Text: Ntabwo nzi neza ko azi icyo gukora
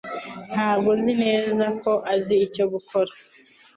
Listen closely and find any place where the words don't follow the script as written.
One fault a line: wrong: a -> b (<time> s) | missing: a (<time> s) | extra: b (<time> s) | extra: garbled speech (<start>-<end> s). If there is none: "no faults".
no faults